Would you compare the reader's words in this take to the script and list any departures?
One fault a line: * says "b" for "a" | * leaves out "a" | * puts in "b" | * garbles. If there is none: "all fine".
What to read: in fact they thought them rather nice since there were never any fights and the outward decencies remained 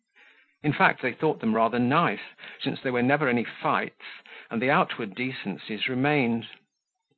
all fine